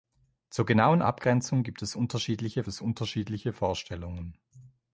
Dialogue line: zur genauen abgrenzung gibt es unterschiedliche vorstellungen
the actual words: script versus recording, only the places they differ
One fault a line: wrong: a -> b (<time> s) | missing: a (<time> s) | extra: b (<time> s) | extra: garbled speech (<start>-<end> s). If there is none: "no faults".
extra: es unterschiedliche (2.7 s)